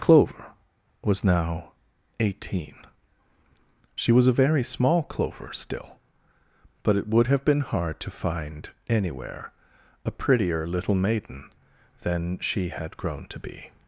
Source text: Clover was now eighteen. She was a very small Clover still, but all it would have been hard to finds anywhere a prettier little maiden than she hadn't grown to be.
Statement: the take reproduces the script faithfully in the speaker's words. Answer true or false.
false